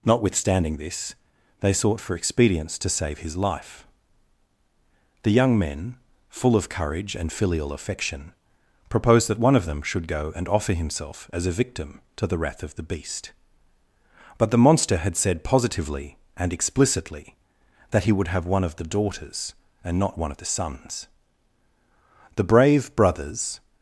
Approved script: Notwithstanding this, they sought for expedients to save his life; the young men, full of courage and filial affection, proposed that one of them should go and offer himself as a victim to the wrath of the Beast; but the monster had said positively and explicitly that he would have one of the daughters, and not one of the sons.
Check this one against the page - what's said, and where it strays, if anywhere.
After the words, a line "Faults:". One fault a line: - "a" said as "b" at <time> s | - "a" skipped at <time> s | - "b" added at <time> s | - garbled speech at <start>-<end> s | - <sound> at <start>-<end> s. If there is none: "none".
Notwithstanding this, they sought for expedients to save his life; the young men, full of courage and filial affection, proposed that one of them should go and offer himself as a victim to the wrath of the Beast; but the monster had said positively and explicitly that he would have one of the daughters, and not one of the sons. The brave brothers
Faults:
- "The brave brothers" added at 22.4 s